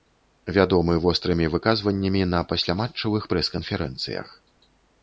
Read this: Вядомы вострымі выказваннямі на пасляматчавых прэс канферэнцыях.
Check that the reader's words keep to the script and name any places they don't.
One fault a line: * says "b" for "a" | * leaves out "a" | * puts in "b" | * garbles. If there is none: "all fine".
all fine